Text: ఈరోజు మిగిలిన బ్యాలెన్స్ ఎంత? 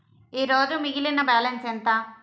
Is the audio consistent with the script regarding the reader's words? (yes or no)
yes